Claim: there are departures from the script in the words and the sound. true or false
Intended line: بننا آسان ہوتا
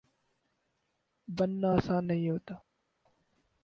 true